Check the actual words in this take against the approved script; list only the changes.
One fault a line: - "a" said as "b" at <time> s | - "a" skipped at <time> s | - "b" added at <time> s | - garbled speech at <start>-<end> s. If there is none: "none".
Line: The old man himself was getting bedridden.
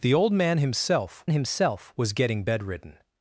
- "himself" added at 1.3 s